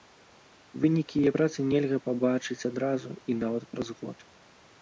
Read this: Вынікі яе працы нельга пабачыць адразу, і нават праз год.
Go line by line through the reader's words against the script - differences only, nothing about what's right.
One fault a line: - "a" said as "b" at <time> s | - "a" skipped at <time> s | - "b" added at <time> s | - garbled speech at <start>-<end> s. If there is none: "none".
none